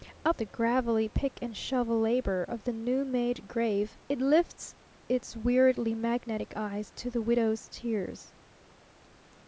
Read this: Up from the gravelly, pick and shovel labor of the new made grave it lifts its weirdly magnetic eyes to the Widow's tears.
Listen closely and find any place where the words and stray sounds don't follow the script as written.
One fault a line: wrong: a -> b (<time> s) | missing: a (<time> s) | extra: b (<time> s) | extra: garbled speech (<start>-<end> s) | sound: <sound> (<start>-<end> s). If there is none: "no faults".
missing: from (0.4 s)